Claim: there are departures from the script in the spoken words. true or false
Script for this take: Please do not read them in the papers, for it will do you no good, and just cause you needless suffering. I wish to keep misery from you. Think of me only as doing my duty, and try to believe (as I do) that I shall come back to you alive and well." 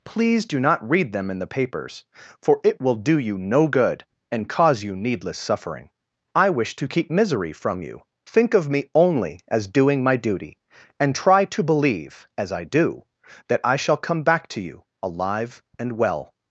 true